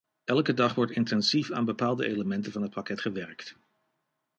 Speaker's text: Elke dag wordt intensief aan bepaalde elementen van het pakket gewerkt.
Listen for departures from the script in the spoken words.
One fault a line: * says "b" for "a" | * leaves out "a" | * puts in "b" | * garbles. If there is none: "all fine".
all fine